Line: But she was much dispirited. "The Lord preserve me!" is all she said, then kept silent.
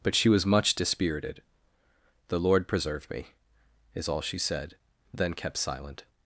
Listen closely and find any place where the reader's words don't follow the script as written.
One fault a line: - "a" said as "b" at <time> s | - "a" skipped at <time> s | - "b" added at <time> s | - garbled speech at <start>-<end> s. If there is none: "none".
none